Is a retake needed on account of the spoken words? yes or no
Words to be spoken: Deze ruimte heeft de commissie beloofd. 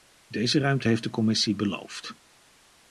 no